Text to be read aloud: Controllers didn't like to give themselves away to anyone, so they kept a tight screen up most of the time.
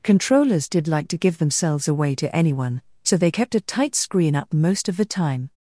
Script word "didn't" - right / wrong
wrong